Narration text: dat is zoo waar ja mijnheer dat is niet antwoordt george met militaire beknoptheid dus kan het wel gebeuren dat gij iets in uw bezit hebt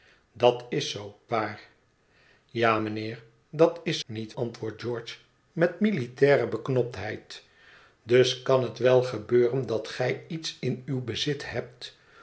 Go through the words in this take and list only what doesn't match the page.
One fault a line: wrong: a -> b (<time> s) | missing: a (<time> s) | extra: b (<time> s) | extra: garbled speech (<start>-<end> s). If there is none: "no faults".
no faults